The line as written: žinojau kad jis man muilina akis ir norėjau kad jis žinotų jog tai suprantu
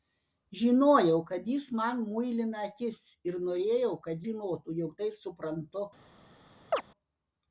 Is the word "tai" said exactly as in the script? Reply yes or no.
yes